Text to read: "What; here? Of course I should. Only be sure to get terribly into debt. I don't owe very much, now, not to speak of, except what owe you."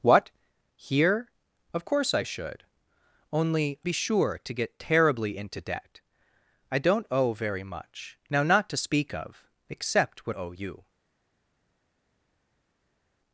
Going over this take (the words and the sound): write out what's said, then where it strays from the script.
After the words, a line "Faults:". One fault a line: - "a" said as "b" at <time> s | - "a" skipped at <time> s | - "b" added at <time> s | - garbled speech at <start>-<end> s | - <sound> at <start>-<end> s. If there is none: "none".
"What; here? Of course I should. Only be sure to get terribly into debt. I don't owe very much, now, not to speak of, except what owe you."
Faults:
none